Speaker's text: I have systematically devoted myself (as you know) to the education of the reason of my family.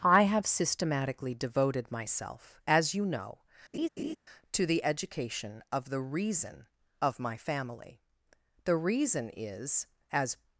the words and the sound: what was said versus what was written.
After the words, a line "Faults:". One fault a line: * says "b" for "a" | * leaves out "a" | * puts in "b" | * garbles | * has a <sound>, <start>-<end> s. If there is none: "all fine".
I have systematically devoted myself (as you know) to the education of the reason of my family. The reason is (as
Faults:
* has a laugh, 3.7-4.2 s
* puts in "The reason is as"